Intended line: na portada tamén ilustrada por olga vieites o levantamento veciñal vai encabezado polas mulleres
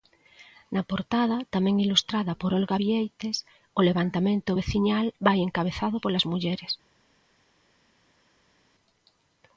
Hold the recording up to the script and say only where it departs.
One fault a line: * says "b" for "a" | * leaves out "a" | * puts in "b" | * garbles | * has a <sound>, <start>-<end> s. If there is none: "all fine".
all fine